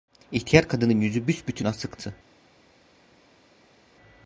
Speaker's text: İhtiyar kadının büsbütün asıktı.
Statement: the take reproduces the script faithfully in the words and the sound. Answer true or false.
false